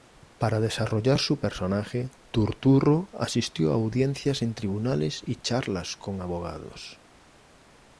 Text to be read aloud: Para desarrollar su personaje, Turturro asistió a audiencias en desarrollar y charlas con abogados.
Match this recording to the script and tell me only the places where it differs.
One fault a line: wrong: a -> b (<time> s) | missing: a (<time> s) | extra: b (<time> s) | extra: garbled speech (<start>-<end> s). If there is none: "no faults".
wrong: desarrollar -> tribunales (4.5 s)